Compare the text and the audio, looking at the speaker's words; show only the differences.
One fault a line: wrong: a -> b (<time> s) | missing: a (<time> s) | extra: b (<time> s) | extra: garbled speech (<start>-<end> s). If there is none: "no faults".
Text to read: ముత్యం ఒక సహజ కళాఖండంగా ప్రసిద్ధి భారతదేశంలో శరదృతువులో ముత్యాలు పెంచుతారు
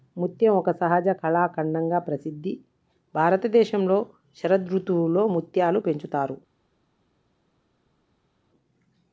no faults